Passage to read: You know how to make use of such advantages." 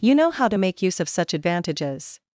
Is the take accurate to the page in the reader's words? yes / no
yes